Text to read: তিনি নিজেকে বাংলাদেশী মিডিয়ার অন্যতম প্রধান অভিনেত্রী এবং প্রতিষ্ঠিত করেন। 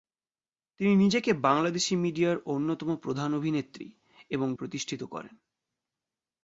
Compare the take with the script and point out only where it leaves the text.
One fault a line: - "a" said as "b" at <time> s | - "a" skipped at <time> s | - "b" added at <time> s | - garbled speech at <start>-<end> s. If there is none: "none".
none